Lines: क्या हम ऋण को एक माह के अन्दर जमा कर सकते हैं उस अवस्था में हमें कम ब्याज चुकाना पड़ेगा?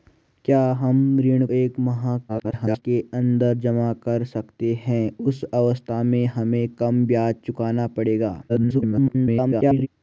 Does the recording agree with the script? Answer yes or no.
no